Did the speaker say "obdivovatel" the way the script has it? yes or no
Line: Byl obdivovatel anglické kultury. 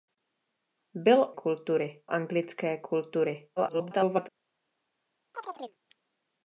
no